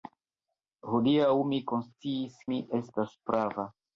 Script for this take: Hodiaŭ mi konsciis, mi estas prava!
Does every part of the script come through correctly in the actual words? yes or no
yes